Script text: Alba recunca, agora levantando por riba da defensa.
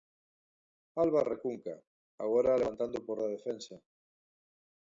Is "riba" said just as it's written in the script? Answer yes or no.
no